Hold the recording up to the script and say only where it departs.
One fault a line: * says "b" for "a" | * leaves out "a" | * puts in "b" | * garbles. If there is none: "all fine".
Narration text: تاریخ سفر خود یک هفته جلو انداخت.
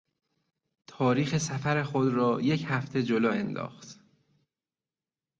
* puts in "را"